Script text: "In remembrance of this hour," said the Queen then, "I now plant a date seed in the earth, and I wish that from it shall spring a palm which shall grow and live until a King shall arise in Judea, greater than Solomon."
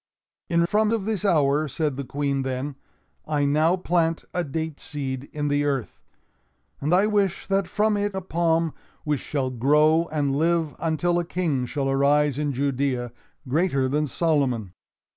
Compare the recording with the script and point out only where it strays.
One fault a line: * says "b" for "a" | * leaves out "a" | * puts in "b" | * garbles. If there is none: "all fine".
* says "from" for "remembrance"
* leaves out "shall spring"